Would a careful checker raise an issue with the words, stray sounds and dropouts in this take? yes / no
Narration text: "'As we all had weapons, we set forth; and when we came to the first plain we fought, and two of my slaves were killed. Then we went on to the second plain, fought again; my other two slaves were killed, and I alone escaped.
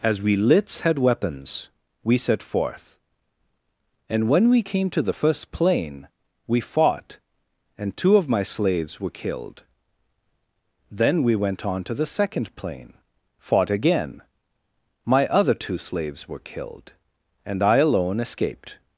yes